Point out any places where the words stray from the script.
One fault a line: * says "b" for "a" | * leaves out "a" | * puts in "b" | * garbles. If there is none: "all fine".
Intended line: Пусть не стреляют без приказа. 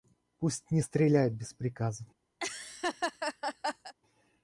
all fine